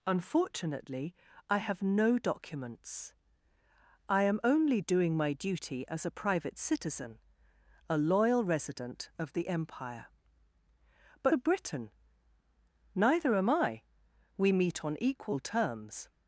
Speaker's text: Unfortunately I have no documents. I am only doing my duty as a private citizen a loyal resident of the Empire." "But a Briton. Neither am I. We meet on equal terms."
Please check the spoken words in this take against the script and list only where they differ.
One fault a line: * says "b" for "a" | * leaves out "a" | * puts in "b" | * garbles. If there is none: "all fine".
all fine